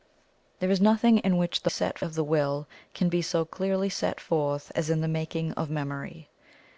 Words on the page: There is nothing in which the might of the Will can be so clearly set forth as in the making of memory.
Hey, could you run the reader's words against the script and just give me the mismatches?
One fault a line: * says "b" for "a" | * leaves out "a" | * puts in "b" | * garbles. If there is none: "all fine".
* says "set" for "might"